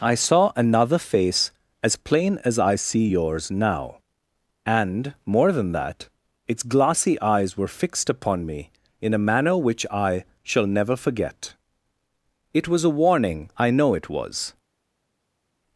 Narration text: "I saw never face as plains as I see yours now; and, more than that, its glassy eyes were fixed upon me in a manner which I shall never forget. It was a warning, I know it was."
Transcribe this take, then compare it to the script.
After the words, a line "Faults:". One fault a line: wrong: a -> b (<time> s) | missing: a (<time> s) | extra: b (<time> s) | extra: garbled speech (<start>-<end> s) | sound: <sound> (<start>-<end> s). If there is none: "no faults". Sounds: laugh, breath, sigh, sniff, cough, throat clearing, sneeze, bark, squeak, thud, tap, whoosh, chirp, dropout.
"I saw another face as plain as I see yours now; and, more than that, its glassy eyes were fixed upon me in a manner which I shall never forget. It was a warning, I know it was."
Faults:
wrong: never -> another (0.6 s)
wrong: plains -> plain (1.9 s)